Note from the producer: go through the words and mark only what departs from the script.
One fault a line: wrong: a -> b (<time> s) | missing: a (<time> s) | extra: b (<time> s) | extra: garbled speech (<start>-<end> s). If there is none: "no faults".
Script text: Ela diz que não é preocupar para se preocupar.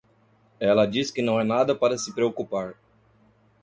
wrong: preocupar -> nada (1.4 s)